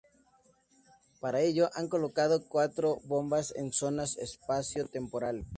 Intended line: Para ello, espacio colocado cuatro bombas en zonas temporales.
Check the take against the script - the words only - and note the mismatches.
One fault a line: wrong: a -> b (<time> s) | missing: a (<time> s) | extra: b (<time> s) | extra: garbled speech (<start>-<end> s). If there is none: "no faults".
wrong: espacio -> han (1.8 s)
extra: espacio (4.2 s)